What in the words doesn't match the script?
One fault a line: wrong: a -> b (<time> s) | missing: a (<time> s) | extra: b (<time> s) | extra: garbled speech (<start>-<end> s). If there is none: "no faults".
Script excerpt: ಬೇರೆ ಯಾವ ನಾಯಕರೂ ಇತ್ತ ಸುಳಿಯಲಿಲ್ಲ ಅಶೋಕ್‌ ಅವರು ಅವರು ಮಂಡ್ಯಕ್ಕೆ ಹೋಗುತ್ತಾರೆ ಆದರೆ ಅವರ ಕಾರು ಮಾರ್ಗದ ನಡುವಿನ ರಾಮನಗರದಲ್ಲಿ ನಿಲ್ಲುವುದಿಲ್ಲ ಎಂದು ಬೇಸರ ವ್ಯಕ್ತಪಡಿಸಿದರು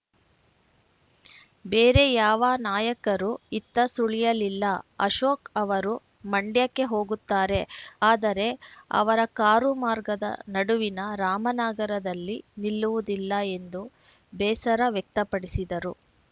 missing: ಅವರು (5.9 s)